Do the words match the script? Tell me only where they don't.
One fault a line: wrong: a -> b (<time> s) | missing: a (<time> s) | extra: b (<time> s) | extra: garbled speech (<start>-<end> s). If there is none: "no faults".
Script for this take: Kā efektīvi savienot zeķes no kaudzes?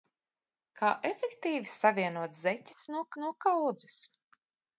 extra: no (3.2 s)